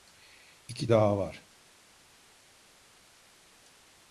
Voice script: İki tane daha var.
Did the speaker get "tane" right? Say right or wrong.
wrong